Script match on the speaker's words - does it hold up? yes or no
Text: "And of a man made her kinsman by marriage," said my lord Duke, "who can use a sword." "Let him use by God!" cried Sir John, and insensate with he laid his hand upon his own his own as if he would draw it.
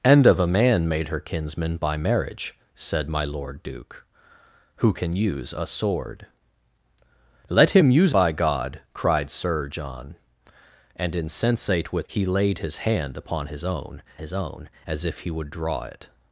yes